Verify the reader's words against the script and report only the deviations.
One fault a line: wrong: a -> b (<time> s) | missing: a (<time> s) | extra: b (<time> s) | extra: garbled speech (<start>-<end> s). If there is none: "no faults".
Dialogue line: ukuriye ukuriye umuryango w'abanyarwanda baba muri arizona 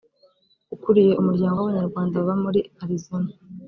missing: ukuriye (1.1 s)